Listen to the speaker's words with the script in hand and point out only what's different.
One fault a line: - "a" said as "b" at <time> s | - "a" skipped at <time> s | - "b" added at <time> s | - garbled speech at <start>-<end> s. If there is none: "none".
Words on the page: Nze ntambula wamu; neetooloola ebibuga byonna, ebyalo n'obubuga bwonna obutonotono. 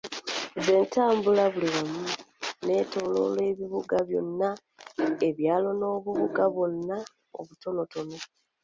- "buli" added at 1.5 s